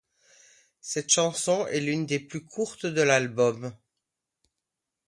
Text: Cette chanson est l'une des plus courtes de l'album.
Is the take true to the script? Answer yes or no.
yes